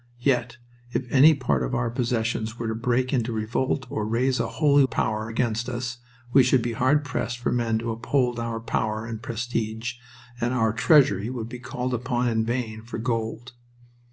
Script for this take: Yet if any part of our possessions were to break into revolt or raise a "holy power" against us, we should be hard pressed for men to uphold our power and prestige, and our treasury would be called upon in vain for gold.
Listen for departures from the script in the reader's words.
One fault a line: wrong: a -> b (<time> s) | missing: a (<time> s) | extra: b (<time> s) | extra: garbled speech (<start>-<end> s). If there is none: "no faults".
no faults